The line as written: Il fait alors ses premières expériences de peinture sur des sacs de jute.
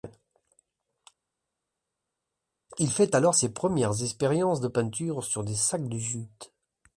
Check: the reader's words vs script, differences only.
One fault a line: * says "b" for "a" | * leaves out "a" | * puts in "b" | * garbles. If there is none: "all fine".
all fine